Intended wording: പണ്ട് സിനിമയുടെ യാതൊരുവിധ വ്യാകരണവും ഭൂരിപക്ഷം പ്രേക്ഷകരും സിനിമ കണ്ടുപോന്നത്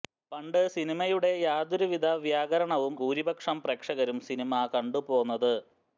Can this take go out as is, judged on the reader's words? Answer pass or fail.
pass